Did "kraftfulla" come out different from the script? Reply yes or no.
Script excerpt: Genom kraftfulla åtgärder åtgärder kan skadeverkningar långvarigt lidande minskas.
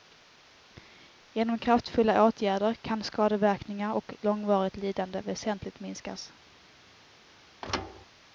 no